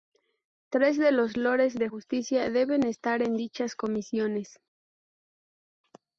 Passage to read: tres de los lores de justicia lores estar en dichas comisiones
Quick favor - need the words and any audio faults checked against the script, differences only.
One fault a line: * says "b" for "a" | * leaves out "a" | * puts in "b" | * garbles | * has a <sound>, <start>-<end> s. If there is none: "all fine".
* says "deben" for "lores"